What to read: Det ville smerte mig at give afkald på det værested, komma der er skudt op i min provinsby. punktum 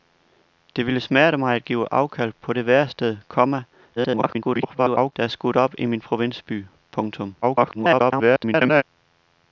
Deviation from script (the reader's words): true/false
true